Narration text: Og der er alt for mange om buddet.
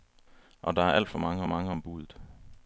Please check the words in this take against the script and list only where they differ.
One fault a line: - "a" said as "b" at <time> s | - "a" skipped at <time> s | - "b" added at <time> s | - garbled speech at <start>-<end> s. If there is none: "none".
- "mange" added at 1.5 s